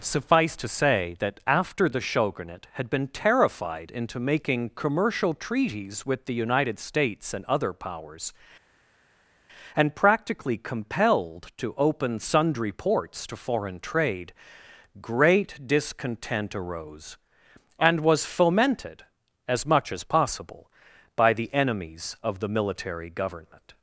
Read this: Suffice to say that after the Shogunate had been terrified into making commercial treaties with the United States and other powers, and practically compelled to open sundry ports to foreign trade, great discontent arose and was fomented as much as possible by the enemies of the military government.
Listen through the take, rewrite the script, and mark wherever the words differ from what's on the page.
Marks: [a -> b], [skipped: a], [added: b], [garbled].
Suffice to say that after the Shogunate had been terrified into making commercial treaties with the United States and other powers, and practically compelled to open sundry ports to foreign trade, great discontent arose and was fomented as much as possible by the enemies of the military government.